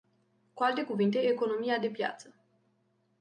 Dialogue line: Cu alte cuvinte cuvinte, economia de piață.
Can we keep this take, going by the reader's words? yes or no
no